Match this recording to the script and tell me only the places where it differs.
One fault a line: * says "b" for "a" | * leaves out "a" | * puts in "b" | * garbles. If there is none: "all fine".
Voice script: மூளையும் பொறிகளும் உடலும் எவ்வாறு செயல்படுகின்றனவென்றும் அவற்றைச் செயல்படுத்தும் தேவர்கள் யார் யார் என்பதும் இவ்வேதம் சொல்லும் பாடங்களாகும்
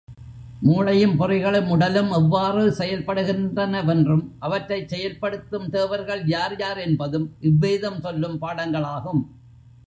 all fine